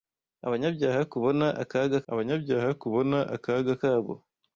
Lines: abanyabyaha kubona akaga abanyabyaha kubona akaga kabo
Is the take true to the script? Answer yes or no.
yes